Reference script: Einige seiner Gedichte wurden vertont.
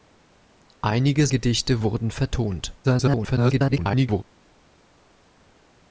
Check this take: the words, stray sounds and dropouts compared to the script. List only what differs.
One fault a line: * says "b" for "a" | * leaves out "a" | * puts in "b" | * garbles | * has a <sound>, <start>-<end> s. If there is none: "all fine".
* leaves out "seiner"
* garbles